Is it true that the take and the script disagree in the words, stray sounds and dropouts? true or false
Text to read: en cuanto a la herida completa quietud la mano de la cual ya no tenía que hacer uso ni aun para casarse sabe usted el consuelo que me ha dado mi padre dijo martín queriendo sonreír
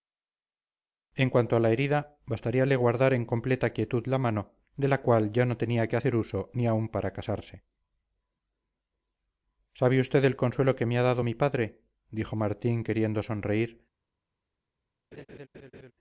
true